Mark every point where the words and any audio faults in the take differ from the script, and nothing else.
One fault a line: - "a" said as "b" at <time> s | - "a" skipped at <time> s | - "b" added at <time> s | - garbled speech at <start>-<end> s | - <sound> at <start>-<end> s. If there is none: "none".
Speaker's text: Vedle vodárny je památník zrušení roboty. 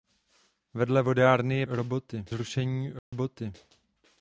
- "památník" said as "roboty" at 1.7 s
- dropout at 3.0-3.1 s